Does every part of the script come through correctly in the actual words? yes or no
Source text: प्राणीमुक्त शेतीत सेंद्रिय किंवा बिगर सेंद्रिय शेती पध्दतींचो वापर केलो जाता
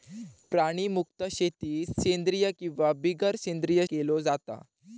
no